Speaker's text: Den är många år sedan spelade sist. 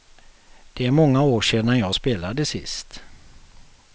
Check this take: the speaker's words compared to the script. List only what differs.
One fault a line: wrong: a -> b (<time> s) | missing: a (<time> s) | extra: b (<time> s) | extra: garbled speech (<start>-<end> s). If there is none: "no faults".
wrong: Den -> Det (0.7 s)
extra: jag (1.8 s)